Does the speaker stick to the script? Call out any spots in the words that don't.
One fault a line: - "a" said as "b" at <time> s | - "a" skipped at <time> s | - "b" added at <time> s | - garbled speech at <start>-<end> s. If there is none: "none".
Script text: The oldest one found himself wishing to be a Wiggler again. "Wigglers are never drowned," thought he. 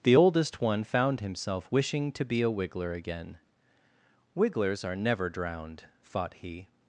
none